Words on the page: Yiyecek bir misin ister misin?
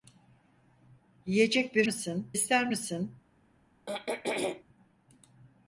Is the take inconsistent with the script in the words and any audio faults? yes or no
yes